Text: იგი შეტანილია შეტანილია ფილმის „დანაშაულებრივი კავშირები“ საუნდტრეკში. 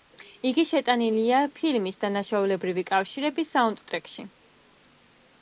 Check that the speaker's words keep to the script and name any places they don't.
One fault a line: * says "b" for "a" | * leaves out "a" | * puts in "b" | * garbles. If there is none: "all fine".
* leaves out "შეტანილია"